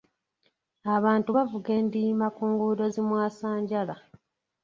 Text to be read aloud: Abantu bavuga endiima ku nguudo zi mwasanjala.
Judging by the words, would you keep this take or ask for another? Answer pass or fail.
pass